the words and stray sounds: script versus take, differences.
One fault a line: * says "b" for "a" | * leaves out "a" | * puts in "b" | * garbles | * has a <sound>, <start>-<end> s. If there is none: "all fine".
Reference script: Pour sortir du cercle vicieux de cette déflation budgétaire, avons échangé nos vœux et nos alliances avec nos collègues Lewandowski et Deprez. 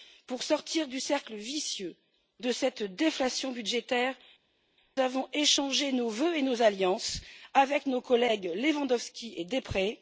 all fine